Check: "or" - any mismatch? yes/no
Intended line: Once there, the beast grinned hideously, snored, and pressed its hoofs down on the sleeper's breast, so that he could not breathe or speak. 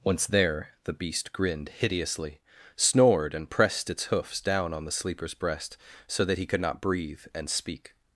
yes